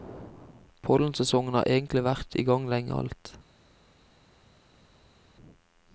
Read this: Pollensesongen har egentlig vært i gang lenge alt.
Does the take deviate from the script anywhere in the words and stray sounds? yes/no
no